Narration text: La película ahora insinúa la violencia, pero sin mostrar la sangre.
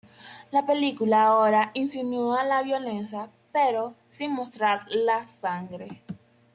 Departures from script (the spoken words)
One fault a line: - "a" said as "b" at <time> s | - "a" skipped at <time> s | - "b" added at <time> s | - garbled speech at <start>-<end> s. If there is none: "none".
none